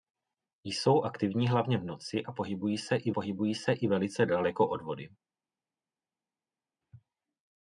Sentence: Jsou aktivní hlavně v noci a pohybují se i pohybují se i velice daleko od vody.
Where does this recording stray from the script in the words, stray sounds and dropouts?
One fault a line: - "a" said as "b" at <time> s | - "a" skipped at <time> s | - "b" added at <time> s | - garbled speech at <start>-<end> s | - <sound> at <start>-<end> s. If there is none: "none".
none